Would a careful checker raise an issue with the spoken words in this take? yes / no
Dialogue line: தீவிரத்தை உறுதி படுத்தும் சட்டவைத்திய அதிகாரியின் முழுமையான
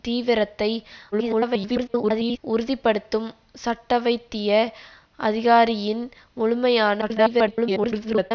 yes